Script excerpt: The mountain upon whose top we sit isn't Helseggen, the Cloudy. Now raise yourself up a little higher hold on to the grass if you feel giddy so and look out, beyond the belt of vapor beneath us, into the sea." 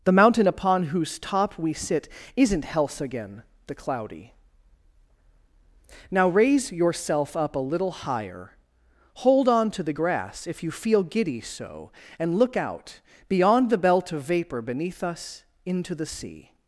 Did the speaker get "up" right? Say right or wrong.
right